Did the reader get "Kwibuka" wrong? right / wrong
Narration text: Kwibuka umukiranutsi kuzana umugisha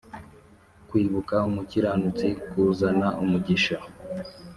right